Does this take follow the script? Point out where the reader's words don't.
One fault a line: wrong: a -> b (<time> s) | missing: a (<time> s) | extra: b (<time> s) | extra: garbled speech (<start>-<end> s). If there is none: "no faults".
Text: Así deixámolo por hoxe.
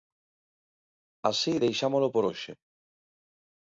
no faults